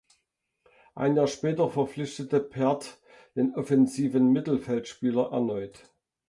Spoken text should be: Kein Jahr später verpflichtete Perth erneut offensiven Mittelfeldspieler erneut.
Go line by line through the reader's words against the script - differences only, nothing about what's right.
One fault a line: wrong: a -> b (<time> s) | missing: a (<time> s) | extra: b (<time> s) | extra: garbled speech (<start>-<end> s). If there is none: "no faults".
wrong: Kein -> Ein (0.9 s)
wrong: erneut -> den (3.4 s)